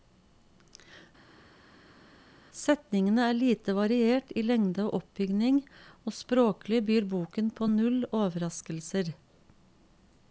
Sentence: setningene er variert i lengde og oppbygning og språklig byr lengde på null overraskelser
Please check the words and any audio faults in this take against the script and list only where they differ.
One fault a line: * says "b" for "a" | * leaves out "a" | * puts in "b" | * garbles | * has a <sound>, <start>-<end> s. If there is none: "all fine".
* puts in "lite"
* says "boken" for "lengde"